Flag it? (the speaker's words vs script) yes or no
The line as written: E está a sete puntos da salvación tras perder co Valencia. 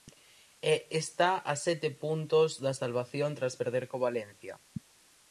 no